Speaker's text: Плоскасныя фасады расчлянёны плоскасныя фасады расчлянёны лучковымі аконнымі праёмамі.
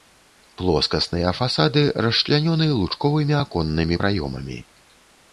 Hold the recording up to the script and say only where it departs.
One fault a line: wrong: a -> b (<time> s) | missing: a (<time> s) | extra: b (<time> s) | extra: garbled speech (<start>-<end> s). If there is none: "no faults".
missing: плоскасныя фасады расчлянёны (2.7 s)